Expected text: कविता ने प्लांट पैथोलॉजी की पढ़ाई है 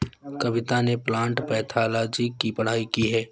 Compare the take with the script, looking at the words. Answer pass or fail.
fail